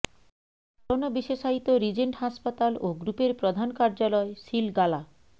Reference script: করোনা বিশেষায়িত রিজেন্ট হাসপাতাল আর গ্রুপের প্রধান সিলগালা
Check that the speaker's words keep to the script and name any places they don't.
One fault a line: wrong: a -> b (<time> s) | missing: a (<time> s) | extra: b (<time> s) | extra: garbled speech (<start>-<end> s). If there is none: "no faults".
wrong: আর -> ও (2.8 s)
extra: কার্যালয় (3.7 s)